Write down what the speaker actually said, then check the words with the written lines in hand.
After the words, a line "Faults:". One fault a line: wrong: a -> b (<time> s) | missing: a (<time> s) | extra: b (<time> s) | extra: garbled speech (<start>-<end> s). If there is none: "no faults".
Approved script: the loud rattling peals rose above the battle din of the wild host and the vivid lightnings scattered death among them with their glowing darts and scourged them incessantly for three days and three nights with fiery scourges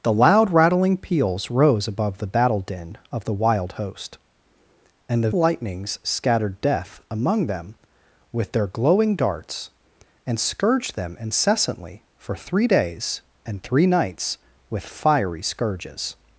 the loud rattling peals rose above the battle din of the wild host and the lightnings scattered death among them with their glowing darts and scourged them incessantly for three days and three nights with fiery scourges
Faults:
missing: vivid (5.3 s)